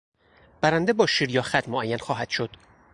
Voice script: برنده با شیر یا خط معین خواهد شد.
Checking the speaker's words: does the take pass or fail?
pass